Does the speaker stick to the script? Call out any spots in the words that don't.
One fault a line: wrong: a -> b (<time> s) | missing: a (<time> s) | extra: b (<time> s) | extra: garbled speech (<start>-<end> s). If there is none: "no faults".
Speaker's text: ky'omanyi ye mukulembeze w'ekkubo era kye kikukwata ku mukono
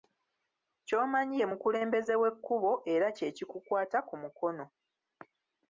no faults